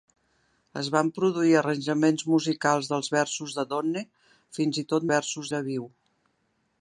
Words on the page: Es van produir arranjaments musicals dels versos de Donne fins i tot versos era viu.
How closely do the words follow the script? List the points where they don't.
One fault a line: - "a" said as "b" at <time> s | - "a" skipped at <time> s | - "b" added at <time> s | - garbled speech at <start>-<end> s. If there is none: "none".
none